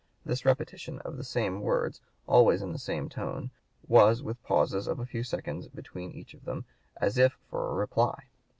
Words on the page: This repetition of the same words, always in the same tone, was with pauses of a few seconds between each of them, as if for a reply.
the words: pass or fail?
pass